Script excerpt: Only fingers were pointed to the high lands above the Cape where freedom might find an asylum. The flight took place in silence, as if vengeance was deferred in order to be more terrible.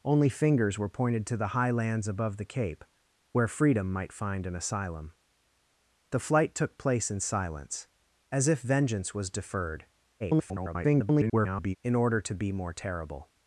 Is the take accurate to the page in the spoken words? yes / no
no